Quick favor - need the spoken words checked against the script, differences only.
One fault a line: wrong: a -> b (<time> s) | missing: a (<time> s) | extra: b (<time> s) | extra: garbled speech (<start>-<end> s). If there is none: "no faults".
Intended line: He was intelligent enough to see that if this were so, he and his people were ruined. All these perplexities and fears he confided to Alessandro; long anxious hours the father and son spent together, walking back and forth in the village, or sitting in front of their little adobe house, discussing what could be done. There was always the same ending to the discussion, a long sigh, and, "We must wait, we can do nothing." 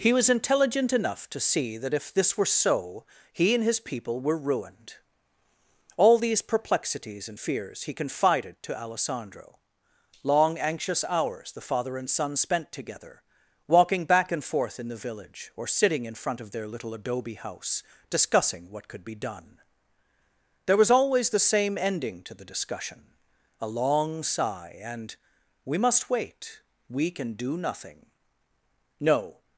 extra: No (29.0 s)